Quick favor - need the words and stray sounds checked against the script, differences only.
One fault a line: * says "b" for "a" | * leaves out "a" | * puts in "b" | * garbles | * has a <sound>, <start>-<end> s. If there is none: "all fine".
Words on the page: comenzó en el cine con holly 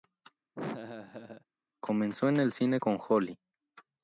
* has a laugh, 0.6-1.5 s